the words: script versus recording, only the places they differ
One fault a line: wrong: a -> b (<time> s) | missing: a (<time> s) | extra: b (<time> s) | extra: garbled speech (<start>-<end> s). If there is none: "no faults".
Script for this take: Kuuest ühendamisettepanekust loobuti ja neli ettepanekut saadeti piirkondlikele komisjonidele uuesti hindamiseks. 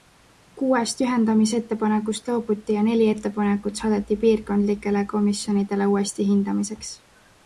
no faults